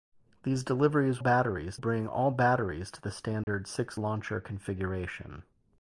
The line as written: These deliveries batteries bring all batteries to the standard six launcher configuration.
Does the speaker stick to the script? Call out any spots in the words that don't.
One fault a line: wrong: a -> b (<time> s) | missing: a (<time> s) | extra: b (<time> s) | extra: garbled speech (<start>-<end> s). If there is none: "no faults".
no faults